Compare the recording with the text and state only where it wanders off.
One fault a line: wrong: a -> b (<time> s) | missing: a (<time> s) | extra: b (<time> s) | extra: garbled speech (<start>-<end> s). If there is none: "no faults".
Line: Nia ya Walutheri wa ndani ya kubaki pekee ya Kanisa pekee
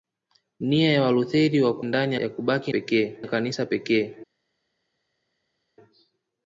no faults